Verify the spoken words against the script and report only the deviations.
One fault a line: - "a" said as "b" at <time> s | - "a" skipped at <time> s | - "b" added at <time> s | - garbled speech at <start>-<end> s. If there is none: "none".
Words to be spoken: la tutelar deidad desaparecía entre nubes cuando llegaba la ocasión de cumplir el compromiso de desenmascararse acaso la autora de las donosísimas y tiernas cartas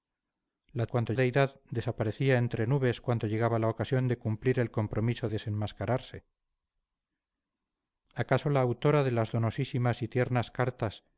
- "tutelar" said as "cuando" at 0.9 s
- "de" skipped at 5.3 s